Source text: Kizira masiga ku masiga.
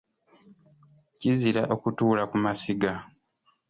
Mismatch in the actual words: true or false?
true